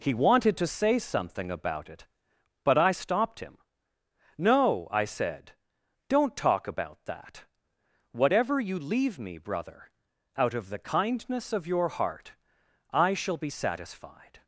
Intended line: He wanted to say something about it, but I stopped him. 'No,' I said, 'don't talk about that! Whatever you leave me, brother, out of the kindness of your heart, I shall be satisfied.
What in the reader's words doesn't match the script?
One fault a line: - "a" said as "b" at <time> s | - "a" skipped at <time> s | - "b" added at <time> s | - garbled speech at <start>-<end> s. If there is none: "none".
none